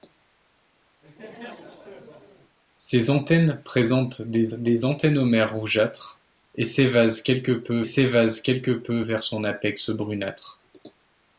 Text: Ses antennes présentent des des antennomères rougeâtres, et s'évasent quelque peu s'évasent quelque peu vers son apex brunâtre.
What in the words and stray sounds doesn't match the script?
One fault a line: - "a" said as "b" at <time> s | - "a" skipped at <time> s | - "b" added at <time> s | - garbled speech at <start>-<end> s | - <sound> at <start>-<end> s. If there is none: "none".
- laugh at 1.0-2.6 s